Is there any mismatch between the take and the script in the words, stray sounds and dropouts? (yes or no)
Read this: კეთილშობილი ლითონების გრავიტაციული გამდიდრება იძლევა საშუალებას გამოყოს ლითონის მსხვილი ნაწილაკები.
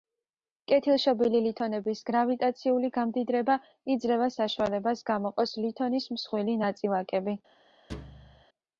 yes